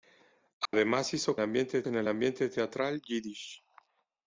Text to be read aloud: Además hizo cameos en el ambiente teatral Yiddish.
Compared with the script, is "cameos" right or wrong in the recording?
wrong